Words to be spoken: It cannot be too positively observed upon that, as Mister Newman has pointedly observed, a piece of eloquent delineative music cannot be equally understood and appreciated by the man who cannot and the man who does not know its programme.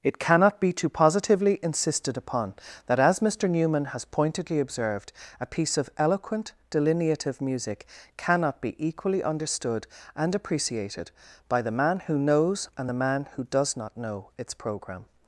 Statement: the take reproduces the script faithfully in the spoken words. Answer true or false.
false